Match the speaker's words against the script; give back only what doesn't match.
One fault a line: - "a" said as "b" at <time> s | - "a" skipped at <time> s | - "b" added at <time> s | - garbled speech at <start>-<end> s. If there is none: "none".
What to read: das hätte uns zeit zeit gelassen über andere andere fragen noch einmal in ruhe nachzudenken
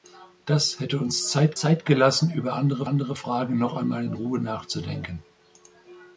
none